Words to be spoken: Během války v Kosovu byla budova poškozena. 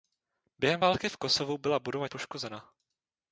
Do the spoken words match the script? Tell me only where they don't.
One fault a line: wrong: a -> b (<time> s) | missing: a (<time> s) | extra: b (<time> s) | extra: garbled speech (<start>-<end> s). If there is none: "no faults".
no faults